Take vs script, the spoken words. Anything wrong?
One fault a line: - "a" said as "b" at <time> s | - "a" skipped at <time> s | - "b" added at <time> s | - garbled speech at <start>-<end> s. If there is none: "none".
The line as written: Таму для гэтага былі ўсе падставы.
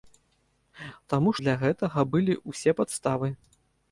none